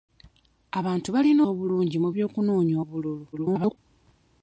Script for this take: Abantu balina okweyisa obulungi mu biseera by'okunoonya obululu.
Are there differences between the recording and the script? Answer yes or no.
yes